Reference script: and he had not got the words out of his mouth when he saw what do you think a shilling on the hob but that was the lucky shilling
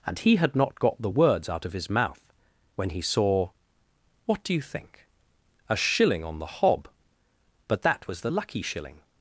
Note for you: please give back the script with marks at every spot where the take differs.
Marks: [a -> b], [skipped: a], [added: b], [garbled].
and he had not got the words out of his mouth when he saw what do you think a shilling on the hob but that was the lucky shilling